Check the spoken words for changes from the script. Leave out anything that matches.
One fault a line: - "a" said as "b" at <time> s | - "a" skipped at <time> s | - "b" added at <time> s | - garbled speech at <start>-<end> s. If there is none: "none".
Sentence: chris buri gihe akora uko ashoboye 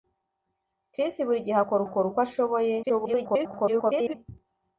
- "akora" added at 1.8 s
- garbled speech at 2.8-4.1 s